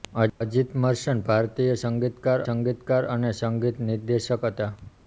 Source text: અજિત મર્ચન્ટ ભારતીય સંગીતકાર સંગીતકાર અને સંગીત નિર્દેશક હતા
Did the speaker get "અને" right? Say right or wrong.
right